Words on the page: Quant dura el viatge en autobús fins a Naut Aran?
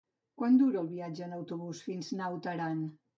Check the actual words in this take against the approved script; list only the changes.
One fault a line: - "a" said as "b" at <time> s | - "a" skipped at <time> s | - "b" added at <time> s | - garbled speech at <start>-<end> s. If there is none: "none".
none